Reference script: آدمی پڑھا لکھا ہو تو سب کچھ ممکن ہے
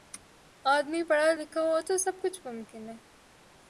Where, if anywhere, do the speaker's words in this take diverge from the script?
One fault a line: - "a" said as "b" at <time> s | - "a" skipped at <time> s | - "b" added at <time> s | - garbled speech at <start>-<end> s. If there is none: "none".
none